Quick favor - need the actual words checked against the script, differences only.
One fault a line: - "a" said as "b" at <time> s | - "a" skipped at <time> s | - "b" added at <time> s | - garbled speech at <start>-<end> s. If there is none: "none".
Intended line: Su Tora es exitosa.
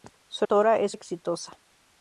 none